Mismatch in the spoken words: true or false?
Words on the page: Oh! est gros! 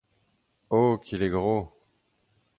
true